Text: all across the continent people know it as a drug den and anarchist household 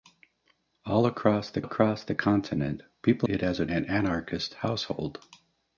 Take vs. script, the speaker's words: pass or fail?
fail